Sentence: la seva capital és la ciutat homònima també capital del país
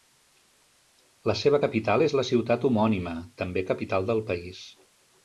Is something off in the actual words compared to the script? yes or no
no